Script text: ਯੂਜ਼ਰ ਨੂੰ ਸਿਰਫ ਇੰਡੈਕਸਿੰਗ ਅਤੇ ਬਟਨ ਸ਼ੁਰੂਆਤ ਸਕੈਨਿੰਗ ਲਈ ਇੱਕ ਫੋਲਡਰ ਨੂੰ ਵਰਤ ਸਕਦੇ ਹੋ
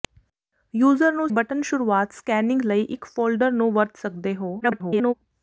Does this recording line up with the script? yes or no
no